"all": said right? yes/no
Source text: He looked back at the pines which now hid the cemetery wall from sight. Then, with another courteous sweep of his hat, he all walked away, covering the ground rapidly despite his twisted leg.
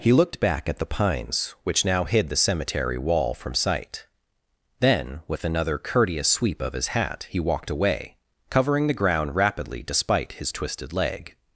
no